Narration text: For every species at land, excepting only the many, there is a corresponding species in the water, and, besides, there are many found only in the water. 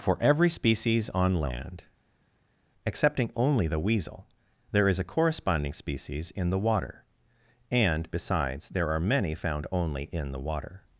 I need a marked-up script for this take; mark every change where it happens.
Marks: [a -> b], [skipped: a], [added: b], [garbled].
For every species [at -> on] land, excepting only the [many, -> weasel] there is a corresponding species in the water, and, besides, there are many found only in the water.